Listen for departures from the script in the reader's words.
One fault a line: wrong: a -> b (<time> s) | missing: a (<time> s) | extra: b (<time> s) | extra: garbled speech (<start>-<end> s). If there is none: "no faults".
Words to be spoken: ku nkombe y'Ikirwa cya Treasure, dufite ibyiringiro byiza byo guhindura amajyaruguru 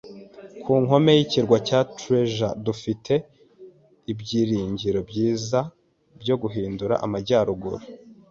no faults